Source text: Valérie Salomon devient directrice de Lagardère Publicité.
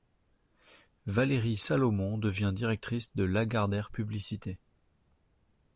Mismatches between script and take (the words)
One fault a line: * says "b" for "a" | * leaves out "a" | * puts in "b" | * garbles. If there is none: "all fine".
all fine